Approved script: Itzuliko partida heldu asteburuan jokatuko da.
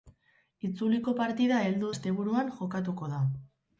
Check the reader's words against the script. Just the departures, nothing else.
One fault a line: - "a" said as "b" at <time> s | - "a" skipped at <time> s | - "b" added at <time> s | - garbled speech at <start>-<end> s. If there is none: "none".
none